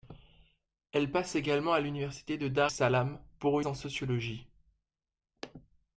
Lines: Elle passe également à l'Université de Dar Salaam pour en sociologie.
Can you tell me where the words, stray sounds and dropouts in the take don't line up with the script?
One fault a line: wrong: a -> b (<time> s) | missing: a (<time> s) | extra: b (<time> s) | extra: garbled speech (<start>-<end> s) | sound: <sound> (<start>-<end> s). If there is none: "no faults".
no faults